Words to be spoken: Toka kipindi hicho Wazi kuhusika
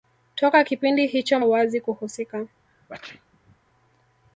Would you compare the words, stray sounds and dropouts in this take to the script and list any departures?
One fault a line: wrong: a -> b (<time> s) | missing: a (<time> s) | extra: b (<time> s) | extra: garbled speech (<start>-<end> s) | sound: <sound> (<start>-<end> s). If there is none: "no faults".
sound: sneeze (2.7-3.6 s)